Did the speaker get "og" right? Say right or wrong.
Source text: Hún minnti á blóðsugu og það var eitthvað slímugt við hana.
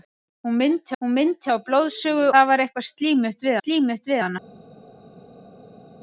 wrong